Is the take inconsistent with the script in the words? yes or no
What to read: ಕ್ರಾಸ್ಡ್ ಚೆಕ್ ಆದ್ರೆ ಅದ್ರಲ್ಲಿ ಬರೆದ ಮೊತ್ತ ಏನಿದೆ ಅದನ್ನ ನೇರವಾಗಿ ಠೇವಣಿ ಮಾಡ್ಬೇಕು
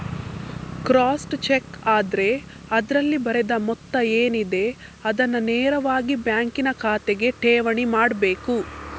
yes